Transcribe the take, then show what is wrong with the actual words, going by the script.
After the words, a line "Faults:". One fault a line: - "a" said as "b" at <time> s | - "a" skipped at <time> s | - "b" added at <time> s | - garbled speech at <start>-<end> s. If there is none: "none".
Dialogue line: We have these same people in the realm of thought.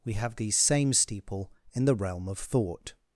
We have these same steeple in the realm of thought.
Faults:
- "people" said as "steeple" at 0.9 s